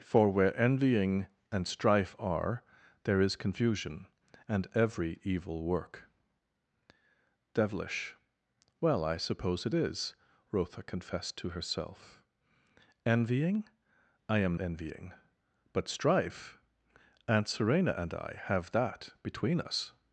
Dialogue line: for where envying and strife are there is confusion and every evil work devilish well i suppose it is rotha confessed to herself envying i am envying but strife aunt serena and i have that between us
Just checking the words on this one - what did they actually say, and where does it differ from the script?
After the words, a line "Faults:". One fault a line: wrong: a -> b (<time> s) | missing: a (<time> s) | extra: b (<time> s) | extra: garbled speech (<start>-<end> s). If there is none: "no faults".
for where envying and strife are there is confusion and every evil work devilish well i suppose it is rotha confessed to herself envying i am envying but strife aunt serena and i have that between us
Faults:
no faults